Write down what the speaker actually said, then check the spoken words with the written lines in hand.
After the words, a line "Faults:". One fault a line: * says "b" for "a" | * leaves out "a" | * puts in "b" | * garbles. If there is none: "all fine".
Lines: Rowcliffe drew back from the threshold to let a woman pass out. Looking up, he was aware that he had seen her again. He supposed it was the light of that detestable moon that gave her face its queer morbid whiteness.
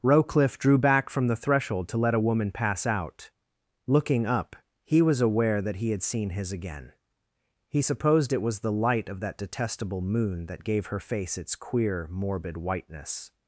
Rowcliffe drew back from the threshold to let a woman pass out. Looking up, he was aware that he had seen his again. He supposed it was the light of that detestable moon that gave her face its queer morbid whiteness.
Faults:
* says "his" for "her"